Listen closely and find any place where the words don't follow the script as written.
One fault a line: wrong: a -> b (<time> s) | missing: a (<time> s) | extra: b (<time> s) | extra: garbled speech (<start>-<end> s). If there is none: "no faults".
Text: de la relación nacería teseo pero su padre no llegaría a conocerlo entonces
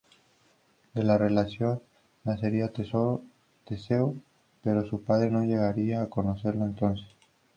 no faults